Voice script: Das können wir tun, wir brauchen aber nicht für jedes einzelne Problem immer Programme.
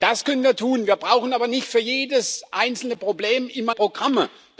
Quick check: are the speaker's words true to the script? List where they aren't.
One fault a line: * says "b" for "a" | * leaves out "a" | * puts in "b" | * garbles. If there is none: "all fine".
all fine